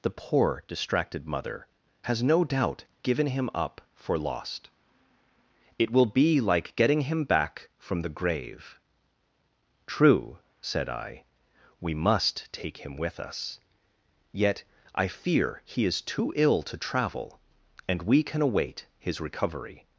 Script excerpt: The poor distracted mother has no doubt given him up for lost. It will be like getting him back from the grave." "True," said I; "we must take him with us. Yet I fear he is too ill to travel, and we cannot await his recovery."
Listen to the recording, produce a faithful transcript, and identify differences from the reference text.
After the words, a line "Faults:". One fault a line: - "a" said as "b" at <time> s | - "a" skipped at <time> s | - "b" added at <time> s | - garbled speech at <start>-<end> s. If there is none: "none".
The poor distracted mother has no doubt given him up for lost. It will be like getting him back from the grave." "True," said I; "we must take him with us. Yet I fear he is too ill to travel, and we can await his recovery."
Faults:
- "cannot" said as "can" at 18.2 s